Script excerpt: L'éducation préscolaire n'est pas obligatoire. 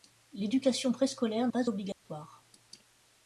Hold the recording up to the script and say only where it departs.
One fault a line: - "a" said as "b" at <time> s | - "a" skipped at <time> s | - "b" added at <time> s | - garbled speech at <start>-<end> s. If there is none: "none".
- "n'est" skipped at 1.5 s